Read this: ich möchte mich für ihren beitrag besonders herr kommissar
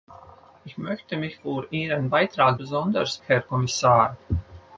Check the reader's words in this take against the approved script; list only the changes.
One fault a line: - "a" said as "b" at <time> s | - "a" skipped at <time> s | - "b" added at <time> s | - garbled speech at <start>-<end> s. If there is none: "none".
none